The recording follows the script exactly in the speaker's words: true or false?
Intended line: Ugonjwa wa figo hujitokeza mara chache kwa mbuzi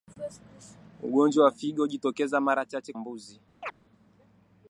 false